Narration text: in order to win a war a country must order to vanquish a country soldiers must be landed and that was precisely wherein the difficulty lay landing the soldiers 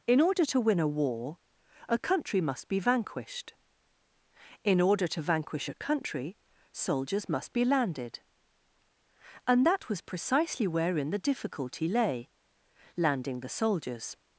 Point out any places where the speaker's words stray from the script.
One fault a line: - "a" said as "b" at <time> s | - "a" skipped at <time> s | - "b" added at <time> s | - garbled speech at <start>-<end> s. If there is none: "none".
- "be vanquished in" added at 2.7 s